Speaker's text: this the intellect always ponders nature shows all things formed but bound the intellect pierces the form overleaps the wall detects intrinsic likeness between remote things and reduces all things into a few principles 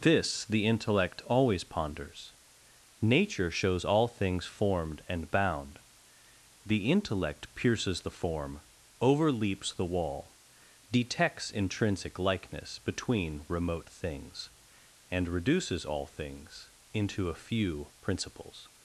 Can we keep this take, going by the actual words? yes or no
no